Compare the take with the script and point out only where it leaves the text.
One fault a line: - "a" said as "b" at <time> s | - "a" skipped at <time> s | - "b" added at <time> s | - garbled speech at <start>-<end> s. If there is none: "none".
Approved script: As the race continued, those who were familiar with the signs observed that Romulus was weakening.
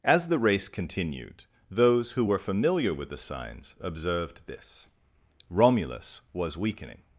- "that" said as "this" at 4.5 s